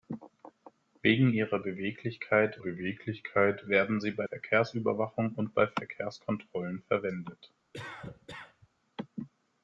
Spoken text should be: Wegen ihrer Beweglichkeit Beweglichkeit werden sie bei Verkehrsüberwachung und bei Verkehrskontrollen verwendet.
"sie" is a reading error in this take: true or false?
false